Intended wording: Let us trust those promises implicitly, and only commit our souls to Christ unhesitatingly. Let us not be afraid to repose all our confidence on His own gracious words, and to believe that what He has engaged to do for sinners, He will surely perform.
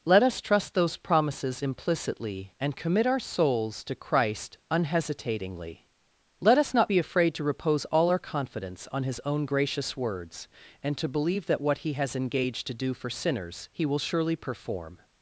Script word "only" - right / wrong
wrong